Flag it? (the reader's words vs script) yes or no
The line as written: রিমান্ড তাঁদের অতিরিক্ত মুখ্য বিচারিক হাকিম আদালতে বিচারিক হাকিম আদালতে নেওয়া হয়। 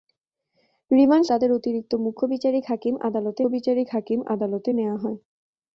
no